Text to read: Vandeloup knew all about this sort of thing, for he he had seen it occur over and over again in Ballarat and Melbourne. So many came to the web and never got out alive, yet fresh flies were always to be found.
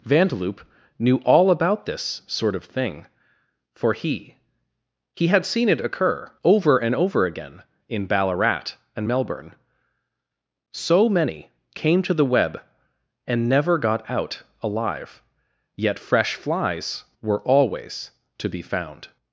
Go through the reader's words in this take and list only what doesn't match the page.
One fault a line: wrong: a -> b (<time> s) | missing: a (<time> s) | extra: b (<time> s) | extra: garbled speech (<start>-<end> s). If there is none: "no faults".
no faults